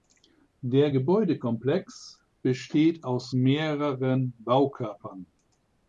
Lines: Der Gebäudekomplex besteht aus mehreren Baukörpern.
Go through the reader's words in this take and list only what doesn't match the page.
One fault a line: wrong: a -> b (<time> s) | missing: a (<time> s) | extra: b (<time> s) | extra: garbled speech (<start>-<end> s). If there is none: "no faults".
no faults